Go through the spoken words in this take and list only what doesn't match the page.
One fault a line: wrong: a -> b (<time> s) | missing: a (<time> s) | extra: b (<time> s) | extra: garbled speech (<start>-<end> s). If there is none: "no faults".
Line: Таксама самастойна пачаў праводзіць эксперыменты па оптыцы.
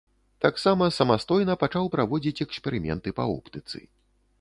no faults